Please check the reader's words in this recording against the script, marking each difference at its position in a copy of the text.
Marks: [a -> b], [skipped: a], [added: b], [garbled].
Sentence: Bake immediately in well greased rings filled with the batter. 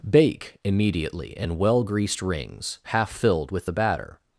Bake immediately in well greased rings [added: half] filled with the batter.